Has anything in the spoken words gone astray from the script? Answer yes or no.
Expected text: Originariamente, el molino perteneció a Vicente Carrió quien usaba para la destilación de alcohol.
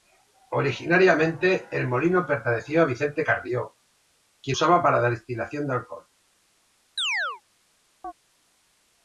no